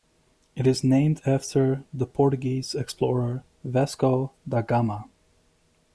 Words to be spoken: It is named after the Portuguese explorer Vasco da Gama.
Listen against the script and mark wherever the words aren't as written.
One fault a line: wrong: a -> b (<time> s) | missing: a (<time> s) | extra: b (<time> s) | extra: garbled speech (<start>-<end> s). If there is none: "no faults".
no faults